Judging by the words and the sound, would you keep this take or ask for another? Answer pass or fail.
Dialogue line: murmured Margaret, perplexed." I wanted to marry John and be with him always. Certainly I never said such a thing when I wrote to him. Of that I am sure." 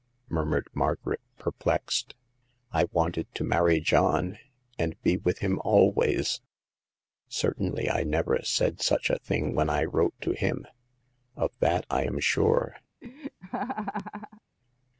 fail